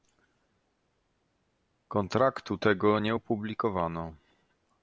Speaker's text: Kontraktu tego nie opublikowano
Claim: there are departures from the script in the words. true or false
false